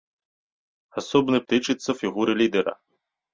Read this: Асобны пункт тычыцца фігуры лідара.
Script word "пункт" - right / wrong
wrong